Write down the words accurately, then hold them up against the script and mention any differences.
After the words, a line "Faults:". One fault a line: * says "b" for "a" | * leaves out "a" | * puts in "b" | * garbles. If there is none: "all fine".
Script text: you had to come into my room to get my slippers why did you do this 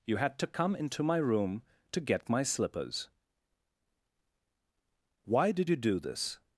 you had to come into my room to get my slippers why did you do this
Faults:
all fine